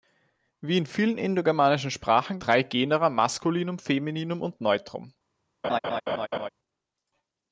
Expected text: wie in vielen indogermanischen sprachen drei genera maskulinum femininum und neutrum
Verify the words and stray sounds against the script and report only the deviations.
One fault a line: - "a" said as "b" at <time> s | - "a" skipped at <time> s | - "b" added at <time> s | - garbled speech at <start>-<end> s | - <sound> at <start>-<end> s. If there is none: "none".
- laugh at 5.6-6.5 s